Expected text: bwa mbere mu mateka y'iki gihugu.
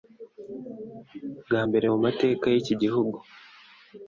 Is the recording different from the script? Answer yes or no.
no